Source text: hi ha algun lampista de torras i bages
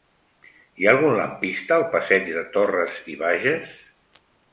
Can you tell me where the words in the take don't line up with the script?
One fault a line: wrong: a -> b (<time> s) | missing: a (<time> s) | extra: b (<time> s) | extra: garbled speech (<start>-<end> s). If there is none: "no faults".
extra: al passeig (1.8 s)